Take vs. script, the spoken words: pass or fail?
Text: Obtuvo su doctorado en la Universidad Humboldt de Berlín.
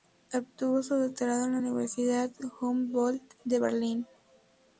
pass